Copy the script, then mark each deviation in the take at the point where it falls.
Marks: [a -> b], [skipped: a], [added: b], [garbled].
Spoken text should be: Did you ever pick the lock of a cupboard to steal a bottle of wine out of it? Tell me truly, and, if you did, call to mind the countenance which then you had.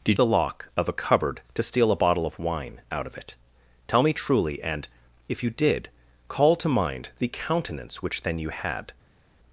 Did [skipped: you ever pick] the lock of a cupboard to steal a bottle of wine out of it? Tell me truly, and, if you did, call to mind the countenance which then you had.